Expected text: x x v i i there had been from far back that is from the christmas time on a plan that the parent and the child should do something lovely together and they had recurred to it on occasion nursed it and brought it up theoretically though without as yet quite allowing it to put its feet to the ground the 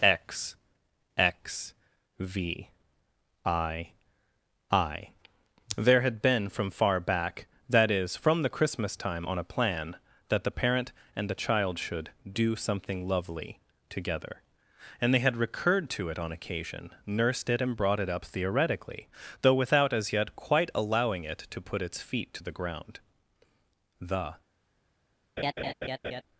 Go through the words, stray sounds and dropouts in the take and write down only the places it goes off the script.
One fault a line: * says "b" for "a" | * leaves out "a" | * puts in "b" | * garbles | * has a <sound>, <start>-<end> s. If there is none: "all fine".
* has a laugh, 25.4-26.2 s